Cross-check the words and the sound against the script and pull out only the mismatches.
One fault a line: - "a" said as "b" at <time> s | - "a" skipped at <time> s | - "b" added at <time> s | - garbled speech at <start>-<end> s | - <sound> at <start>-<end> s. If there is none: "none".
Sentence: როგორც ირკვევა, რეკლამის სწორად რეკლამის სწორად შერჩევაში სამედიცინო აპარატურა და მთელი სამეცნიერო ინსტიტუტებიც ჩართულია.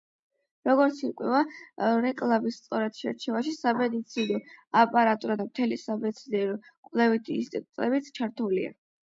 - "რეკლამის სწორად" skipped at 3.0 s
- "კვლევითი" added at 6.7 s